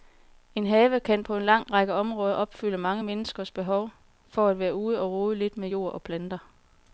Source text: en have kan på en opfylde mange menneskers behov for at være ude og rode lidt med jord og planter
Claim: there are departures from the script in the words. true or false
true